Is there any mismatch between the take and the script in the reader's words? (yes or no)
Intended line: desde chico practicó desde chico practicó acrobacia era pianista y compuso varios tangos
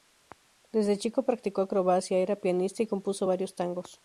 yes